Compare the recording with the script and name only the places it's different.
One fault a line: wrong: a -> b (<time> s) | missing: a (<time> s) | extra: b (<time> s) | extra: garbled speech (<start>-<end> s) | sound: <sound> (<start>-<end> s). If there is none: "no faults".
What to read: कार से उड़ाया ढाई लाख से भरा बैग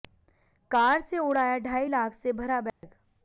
sound: dropout (2.7-2.8 s)